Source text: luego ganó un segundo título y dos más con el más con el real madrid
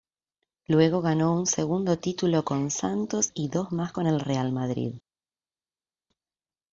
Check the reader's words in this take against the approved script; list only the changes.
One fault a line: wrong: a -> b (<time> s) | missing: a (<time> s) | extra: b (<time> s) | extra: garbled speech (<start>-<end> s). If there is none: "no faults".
extra: con santos (2.4 s)
missing: más con el (4.2 s)